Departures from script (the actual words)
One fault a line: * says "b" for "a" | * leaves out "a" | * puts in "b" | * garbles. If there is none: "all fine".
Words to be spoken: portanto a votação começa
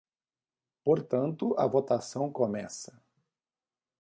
all fine